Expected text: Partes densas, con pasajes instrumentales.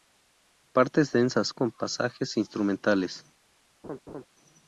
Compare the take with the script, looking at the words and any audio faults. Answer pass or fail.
fail